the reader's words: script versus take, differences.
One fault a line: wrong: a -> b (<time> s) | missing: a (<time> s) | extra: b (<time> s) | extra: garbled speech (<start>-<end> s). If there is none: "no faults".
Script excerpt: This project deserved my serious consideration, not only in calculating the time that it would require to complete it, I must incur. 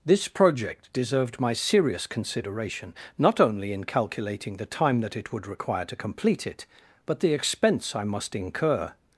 extra: but the expense (7.0 s)